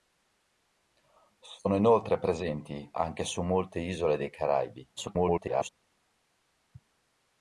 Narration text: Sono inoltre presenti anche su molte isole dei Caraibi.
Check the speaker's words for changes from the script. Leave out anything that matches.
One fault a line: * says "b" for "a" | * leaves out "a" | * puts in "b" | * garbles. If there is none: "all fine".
* garbles